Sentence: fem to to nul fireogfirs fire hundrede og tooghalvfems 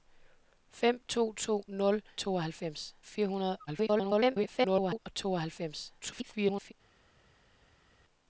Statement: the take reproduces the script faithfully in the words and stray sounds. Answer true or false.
false